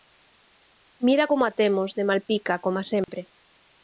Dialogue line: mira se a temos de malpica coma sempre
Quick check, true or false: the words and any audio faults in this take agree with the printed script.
false